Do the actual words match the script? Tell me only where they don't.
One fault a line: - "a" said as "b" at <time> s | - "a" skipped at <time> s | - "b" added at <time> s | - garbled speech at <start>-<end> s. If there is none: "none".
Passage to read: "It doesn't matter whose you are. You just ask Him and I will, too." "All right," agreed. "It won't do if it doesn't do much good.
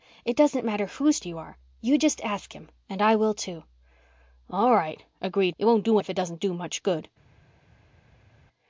none